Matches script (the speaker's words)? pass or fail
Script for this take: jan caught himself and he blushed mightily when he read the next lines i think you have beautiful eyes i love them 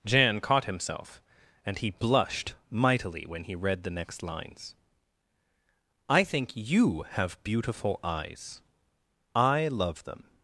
pass